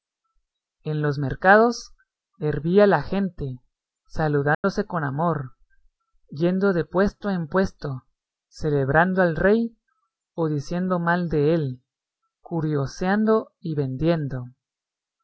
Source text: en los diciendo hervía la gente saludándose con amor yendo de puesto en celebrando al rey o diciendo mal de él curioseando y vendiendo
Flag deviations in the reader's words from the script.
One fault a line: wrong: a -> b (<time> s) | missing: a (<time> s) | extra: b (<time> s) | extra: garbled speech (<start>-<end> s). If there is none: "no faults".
wrong: diciendo -> mercados (1.2 s)
extra: puesto (7.5 s)